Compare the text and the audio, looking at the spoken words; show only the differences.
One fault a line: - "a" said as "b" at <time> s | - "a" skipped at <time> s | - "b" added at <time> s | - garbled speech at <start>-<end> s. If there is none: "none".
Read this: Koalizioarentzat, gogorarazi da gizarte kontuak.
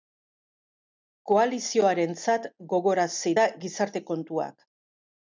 none